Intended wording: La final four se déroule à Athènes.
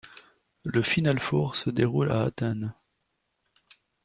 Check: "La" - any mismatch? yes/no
yes